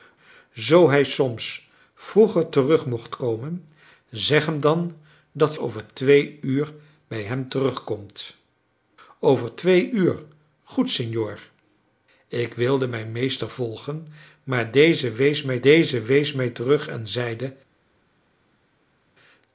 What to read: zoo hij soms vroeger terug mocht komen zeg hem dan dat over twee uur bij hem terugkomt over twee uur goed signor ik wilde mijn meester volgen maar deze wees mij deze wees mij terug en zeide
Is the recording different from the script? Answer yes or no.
no